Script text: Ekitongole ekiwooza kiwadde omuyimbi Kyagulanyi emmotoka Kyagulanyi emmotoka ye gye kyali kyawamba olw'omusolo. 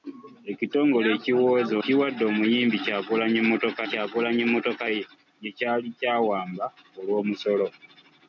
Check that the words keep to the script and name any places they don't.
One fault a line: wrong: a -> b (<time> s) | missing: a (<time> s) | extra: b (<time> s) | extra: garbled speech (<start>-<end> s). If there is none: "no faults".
no faults